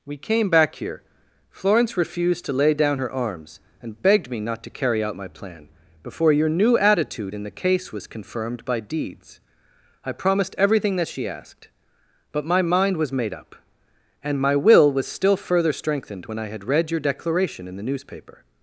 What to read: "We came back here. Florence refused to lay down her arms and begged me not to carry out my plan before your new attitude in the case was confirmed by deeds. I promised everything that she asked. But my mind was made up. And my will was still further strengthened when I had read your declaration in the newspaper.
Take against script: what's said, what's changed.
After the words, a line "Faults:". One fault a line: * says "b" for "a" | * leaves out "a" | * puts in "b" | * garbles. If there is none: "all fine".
"We came back here. Florence refused to lay down her arms and begged me not to carry out my plan before your new attitude in the case was confirmed by deeds. I promised everything that she asked. But my mind was made up. And my will was still further strengthened when I had read your declaration in the newspaper.
Faults:
all fine